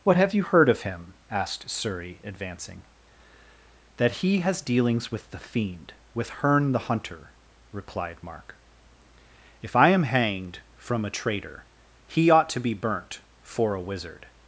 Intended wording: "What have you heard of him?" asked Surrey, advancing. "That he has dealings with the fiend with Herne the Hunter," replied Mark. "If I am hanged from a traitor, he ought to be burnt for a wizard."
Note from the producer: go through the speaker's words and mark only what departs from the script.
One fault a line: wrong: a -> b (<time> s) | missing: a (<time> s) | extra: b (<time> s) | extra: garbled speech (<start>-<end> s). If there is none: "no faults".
no faults